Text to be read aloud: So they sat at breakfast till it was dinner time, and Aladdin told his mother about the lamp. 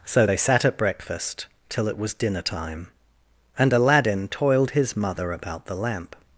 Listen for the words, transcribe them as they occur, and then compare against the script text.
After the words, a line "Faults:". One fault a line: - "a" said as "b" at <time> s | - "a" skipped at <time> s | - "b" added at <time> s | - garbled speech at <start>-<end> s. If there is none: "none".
So they sat at breakfast till it was dinner time, and Aladdin toiled his mother about the lamp.
Faults:
- "told" said as "toiled" at 4.3 s